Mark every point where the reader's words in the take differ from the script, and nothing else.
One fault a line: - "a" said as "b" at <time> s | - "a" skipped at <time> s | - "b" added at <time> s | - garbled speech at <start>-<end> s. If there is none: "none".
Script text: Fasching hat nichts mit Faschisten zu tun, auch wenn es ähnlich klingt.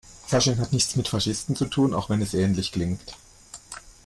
none